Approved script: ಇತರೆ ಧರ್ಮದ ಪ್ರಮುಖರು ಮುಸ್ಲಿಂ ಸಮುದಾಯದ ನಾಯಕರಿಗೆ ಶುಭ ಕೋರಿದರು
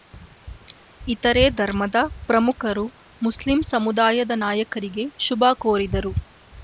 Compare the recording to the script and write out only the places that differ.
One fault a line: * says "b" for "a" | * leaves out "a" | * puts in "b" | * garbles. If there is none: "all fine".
all fine